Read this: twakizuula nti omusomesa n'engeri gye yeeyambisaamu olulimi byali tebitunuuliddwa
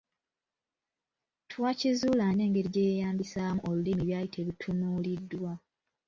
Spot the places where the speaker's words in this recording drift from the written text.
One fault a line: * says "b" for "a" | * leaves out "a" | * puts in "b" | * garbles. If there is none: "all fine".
* leaves out "nti omusomesa"